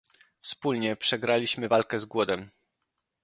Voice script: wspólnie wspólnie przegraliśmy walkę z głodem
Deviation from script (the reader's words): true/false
true